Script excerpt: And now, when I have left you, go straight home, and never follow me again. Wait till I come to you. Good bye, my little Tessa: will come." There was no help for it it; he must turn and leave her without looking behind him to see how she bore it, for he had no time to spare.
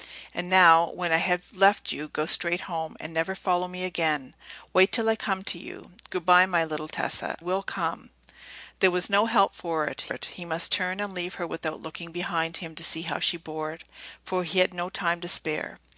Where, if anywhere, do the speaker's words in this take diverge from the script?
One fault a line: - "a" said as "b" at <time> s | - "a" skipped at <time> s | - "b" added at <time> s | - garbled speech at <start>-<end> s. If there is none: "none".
none